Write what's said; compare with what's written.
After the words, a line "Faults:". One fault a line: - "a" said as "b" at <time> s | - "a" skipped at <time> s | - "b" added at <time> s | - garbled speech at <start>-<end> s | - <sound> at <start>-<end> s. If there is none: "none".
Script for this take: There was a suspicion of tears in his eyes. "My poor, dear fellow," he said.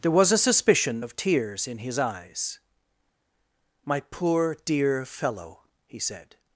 There was a suspicion of tears in his eyes. "My poor, dear fellow," he said.
Faults:
none